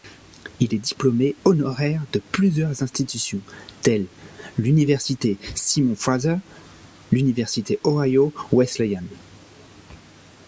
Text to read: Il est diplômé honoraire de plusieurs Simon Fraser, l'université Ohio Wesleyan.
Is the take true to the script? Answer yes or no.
no